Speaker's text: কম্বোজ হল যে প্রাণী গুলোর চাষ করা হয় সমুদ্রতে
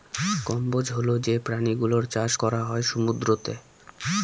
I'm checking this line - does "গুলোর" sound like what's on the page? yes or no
yes